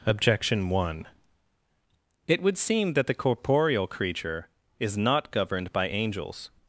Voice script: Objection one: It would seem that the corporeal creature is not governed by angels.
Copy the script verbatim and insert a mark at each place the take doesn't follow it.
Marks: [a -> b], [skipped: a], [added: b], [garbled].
Objection one: It would seem that the corporeal creature is not governed by angels.